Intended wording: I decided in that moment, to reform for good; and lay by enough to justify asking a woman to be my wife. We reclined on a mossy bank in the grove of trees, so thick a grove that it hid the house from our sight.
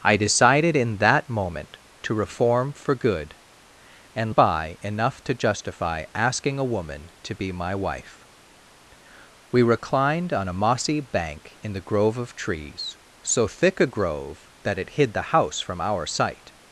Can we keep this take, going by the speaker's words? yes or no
no